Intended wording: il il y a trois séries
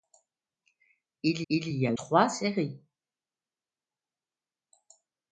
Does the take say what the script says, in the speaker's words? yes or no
yes